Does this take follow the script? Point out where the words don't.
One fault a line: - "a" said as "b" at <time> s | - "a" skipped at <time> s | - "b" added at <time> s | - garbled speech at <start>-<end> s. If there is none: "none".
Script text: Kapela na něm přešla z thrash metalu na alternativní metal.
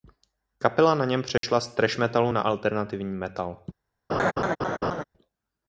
none